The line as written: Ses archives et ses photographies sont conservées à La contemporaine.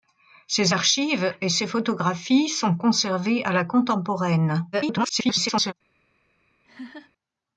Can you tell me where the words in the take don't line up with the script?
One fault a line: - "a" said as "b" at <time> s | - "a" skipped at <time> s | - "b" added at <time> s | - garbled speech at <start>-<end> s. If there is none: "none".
- garbled speech at 4.7-5.7 s